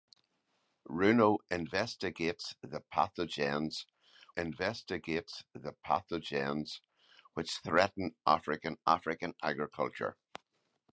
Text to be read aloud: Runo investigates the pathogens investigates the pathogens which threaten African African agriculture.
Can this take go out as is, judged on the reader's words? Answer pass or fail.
pass